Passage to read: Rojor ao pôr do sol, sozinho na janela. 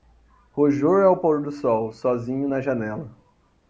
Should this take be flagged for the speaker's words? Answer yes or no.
no